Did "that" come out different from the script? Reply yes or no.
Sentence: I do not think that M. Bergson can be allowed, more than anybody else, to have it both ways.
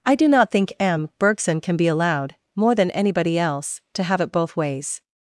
yes